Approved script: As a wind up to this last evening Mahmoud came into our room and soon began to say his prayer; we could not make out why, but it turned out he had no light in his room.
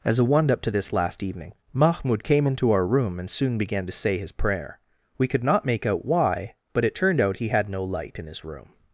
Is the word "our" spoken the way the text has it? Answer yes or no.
yes